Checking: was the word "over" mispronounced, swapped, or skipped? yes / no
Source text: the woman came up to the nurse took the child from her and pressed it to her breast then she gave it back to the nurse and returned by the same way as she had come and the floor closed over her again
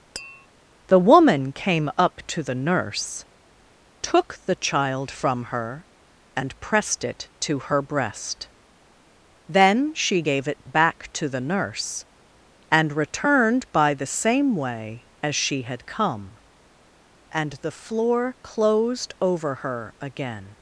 no